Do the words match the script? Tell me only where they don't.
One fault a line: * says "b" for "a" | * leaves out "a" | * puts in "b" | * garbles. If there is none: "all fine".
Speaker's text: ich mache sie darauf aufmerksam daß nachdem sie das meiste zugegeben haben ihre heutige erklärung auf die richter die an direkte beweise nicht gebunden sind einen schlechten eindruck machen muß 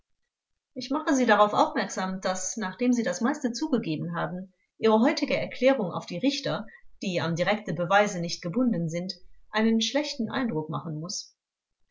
all fine